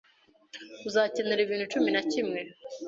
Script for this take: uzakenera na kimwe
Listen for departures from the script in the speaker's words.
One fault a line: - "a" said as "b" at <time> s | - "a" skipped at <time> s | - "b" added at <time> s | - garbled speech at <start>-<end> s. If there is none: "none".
- "ibintu cumi" added at 1.4 s